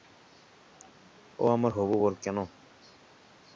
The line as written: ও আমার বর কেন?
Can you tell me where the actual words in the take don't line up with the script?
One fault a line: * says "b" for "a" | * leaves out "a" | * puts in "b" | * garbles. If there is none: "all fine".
* puts in "হবু"